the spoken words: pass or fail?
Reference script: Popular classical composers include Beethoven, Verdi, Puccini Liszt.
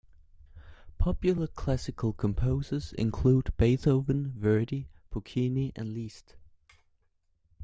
fail